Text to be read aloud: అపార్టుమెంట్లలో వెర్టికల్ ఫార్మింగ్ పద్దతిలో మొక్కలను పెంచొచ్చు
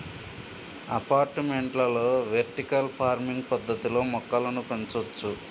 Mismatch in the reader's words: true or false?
false